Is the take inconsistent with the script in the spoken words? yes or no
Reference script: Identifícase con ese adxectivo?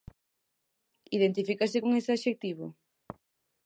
no